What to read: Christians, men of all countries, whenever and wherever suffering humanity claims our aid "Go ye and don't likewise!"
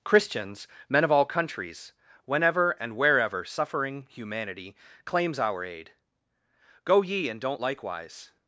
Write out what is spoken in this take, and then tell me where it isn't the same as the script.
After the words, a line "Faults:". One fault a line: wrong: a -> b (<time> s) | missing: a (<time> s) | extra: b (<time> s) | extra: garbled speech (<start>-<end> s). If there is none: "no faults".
Christians, men of all countries, whenever and wherever suffering humanity claims our aid "Go ye and don't likewise!"
Faults:
no faults